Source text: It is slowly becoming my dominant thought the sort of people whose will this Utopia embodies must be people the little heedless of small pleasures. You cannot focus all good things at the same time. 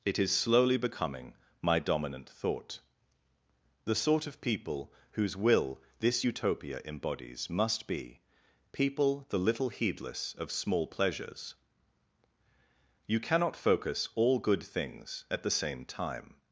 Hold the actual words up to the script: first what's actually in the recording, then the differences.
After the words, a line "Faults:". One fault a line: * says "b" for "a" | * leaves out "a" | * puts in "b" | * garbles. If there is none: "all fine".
It is slowly becoming my dominant thought the sort of people whose will this Utopia embodies must be people the little heedless of small pleasures. You cannot focus all good things at the same time.
Faults:
all fine